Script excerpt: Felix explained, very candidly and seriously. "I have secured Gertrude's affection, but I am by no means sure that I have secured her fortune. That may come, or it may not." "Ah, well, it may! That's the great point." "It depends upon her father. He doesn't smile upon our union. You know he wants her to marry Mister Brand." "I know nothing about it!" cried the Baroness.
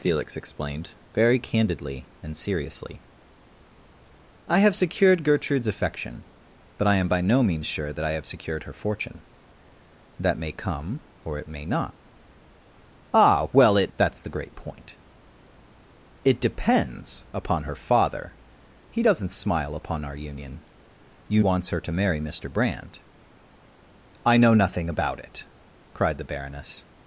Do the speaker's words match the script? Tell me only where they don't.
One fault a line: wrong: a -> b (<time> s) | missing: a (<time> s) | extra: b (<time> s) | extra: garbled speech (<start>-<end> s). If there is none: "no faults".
missing: may (13.9 s)
missing: know he (21.4 s)